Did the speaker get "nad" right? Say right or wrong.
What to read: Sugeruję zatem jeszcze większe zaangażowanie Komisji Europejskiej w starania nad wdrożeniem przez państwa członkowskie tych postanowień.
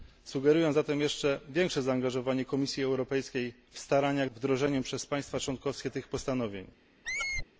wrong